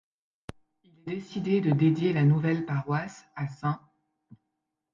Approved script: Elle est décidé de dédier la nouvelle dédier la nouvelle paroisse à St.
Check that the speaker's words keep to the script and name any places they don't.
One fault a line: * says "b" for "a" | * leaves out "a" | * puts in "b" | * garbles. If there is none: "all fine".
* says "Il" for "Elle"
* leaves out "dédier la nouvelle"